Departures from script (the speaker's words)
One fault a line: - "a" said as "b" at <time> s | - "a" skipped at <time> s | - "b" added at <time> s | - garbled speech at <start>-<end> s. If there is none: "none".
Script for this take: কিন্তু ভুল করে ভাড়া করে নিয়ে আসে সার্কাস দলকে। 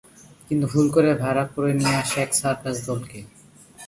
- "এক" added at 2.2 s